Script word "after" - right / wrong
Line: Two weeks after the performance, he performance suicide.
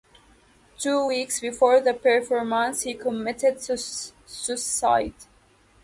wrong